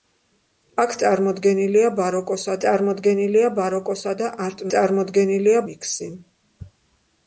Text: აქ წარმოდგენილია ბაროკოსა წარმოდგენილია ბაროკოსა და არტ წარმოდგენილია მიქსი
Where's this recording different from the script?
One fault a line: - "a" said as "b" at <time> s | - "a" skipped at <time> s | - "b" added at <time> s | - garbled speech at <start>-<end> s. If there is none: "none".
none